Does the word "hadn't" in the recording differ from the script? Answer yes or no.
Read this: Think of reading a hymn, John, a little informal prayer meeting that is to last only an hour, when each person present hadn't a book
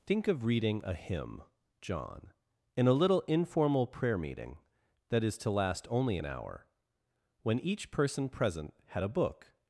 yes